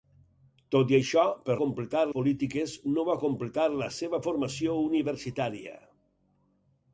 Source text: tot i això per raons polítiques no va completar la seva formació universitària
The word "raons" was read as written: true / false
false